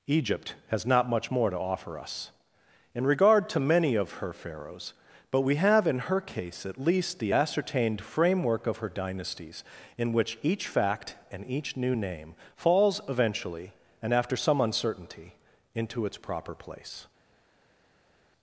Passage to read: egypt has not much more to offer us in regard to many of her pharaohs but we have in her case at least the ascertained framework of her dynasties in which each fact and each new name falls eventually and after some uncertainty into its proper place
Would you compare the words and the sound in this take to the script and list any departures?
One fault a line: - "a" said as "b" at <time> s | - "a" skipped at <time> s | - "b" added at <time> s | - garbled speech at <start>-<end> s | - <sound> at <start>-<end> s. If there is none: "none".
none